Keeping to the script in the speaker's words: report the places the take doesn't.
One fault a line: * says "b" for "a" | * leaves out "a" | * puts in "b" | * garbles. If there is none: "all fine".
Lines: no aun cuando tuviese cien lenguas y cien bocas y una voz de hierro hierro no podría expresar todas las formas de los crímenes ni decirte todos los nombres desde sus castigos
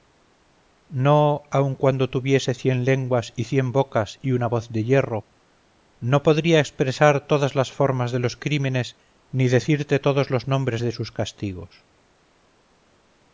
* leaves out "hierro"
* says "de" for "desde"